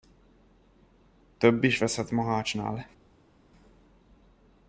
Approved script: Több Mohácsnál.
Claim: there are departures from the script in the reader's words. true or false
true